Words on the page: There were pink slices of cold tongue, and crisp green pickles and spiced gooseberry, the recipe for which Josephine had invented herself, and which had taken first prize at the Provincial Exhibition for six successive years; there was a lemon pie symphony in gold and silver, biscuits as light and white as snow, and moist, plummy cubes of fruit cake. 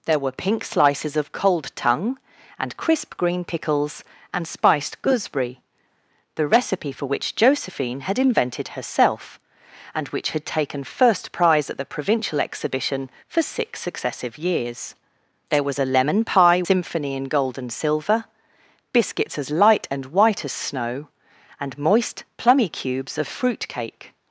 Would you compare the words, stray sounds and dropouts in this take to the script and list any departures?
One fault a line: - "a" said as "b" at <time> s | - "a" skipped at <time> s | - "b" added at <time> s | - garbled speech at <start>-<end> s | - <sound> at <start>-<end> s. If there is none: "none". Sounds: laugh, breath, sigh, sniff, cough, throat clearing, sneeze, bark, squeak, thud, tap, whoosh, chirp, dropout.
none